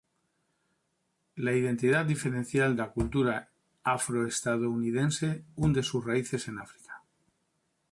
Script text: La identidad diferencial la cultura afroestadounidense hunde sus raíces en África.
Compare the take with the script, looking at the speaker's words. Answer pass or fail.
pass